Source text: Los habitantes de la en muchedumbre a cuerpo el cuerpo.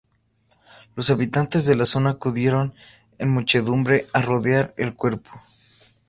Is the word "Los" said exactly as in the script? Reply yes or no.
yes